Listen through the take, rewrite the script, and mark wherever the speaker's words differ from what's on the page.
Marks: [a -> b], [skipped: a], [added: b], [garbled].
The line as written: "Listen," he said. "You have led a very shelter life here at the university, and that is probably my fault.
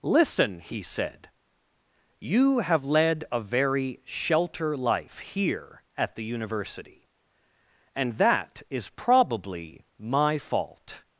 "Listen," he said. "You have led a very shelter life here at the university, and that is probably my fault.